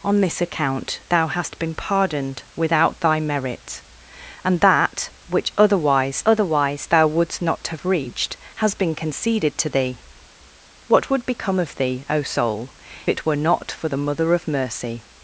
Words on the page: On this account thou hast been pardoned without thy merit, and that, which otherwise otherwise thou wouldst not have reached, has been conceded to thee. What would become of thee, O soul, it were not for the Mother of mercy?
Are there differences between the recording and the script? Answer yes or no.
no